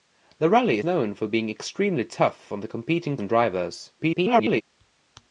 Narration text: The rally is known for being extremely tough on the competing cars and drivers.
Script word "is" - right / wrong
wrong